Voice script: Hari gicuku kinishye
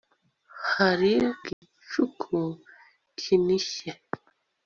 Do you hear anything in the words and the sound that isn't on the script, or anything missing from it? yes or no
yes